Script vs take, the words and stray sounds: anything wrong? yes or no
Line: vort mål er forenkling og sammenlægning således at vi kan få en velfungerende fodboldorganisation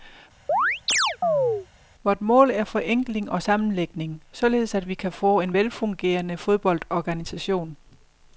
yes